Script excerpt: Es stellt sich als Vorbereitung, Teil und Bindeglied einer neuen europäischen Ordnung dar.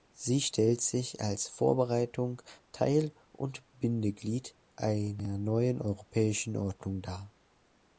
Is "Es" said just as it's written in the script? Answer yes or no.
no